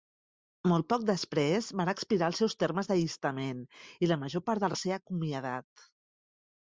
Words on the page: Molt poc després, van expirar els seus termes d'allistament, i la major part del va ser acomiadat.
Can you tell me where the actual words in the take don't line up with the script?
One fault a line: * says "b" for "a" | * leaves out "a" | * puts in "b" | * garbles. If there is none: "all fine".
all fine